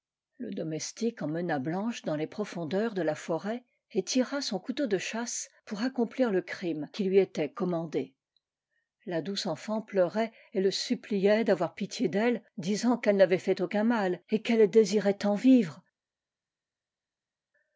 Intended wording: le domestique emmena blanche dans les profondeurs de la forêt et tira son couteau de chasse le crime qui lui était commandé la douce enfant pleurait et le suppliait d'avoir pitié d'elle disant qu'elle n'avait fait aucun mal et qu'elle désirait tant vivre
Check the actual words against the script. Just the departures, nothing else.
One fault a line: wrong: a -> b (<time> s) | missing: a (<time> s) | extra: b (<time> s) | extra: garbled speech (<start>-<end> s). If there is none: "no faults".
extra: pour accomplir (5.7 s)